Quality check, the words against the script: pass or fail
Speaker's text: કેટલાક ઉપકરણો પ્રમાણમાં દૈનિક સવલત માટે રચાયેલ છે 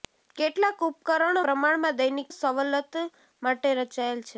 pass